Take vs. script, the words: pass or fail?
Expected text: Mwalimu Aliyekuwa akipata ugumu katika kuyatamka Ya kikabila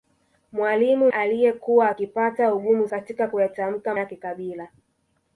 pass